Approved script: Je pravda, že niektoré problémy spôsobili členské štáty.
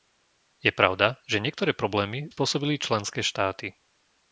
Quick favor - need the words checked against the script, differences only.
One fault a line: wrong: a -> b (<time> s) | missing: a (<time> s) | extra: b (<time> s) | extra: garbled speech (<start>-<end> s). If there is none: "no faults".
no faults